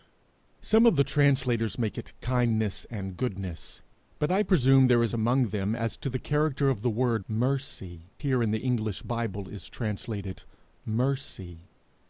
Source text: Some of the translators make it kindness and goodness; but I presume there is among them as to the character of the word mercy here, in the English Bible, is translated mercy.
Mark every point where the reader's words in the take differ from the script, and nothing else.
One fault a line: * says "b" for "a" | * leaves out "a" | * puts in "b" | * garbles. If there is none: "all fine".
all fine